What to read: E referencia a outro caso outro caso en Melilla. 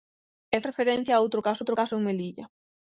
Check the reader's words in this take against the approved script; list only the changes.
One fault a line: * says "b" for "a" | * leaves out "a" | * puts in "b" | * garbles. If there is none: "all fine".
all fine